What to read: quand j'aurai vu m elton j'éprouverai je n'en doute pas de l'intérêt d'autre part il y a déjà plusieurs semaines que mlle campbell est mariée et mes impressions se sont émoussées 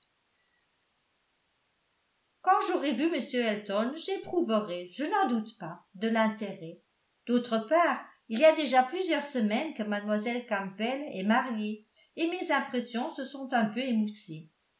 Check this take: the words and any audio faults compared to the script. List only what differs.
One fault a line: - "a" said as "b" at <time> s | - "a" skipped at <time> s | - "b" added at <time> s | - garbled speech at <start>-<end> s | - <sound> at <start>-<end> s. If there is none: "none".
- "un peu" added at 13.5 s